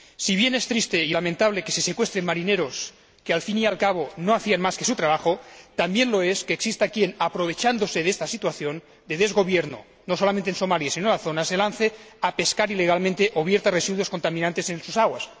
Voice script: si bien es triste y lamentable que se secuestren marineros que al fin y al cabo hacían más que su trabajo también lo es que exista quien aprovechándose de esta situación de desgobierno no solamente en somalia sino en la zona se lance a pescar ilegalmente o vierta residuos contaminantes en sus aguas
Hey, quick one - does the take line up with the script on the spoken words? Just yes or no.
no